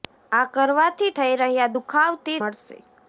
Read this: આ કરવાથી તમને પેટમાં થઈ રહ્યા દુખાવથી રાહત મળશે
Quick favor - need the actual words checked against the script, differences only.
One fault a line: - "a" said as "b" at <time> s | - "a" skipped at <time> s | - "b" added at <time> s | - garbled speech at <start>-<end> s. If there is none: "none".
- "તમને પેટમાં" skipped at 1.1 s
- "રાહત" skipped at 2.4 s